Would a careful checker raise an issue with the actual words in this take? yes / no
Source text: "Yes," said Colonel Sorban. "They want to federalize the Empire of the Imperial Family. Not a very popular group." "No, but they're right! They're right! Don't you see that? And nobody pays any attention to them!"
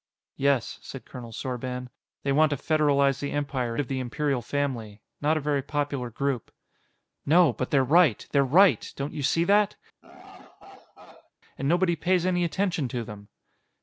no